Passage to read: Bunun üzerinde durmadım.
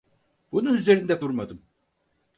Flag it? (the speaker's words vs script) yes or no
no